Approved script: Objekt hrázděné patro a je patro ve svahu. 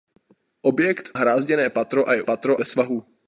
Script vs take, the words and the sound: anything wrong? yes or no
no